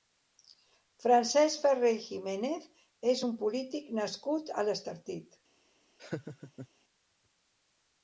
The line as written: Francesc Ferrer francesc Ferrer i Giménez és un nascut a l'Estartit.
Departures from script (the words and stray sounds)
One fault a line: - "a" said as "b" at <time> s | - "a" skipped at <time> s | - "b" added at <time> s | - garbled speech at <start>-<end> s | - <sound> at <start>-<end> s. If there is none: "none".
- "francesc Ferrer" skipped at 1.9 s
- "polític" added at 3.4 s
- laugh at 6.0-6.7 s